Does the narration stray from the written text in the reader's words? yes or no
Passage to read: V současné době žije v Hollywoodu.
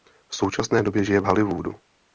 no